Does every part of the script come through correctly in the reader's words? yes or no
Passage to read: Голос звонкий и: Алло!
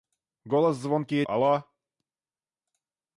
yes